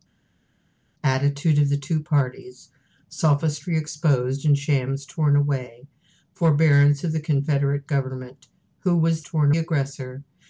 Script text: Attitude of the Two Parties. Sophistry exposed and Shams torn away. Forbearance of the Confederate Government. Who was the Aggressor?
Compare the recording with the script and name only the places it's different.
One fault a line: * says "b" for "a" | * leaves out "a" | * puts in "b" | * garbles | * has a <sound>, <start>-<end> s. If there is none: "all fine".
* says "torn" for "the"